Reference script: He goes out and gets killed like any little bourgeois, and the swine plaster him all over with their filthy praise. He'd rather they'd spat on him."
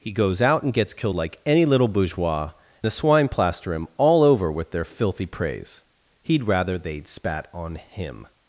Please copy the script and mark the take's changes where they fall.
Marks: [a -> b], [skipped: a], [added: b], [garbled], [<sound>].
He goes out and gets killed like any little bourgeois, [skipped: and] the swine plaster him all over with their filthy praise. He'd rather they'd spat on him."